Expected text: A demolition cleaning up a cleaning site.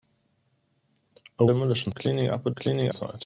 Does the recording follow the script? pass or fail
pass